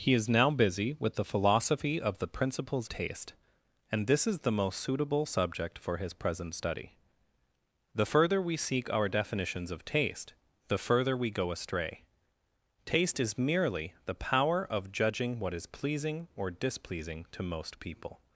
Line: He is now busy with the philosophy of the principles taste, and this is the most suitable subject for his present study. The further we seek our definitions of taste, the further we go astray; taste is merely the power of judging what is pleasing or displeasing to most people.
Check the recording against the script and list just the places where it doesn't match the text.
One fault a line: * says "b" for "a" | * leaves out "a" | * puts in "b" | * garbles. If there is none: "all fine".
all fine